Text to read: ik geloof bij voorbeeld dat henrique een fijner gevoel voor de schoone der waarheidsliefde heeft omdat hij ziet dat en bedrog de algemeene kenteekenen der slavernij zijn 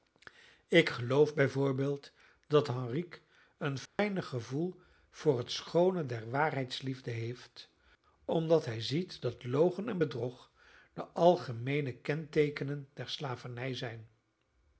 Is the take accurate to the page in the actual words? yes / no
no